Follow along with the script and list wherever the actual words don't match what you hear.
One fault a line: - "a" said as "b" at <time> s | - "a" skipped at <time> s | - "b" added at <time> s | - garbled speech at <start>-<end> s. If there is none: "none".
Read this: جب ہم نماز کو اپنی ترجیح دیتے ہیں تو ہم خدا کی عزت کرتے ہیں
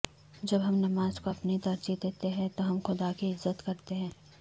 none